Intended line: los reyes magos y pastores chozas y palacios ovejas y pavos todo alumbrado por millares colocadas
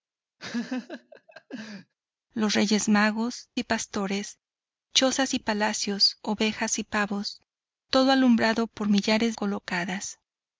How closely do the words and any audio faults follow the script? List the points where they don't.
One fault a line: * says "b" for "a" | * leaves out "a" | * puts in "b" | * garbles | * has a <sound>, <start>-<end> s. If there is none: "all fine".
* has a laugh, 0.4-1.9 s